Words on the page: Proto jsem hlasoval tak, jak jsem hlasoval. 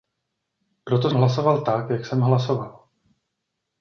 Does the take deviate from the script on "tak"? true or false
false